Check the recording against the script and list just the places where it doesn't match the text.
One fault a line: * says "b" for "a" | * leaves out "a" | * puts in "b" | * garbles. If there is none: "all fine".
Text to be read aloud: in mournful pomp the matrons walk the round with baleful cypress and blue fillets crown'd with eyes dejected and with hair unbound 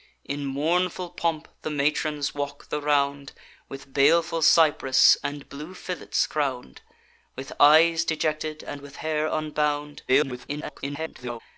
* garbles